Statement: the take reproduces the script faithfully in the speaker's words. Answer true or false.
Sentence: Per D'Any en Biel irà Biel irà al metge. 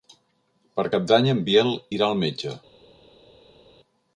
false